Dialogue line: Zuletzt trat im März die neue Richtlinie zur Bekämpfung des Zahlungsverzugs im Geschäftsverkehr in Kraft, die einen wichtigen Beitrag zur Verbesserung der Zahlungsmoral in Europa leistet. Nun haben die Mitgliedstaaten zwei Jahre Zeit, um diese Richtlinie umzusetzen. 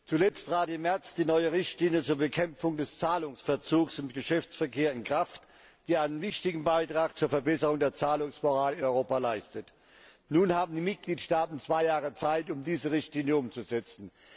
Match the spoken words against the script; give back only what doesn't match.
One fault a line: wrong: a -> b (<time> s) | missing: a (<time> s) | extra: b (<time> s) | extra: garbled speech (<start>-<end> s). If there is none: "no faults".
no faults